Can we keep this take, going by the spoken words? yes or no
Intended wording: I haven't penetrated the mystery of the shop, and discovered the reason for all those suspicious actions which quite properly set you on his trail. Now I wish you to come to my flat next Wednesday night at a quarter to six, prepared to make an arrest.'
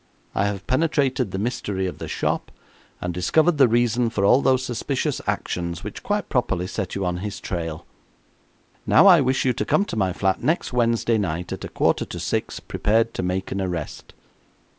no